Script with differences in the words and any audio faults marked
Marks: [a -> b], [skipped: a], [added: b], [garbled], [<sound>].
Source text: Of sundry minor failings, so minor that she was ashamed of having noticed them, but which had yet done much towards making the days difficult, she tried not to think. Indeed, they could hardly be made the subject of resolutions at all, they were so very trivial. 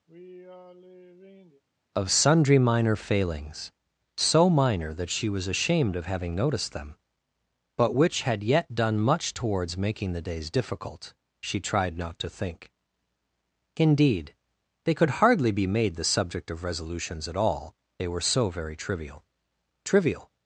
[sigh] Of sundry minor failings, so minor that she was ashamed of having noticed them, but which had yet done much towards making the days difficult, she tried not to think. Indeed, they could hardly be made the subject of resolutions at all, they were so very trivial. [added: trivial]